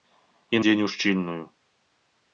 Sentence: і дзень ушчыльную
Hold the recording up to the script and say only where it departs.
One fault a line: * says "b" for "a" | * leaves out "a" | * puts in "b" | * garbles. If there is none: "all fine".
all fine